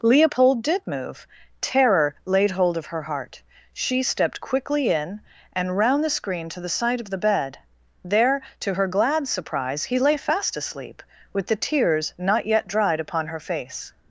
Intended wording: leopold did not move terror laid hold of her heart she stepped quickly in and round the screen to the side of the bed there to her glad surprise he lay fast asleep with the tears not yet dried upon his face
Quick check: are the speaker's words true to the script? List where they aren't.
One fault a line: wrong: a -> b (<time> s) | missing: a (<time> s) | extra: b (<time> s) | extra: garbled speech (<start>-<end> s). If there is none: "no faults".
missing: not (0.8 s)
wrong: his -> her (13.3 s)